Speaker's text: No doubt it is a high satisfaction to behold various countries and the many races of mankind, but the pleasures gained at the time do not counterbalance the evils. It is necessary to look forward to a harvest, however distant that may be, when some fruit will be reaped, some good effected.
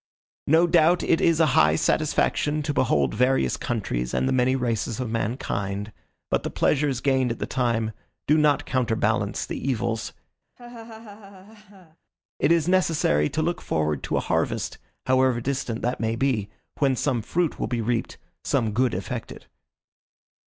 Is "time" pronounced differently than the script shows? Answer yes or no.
no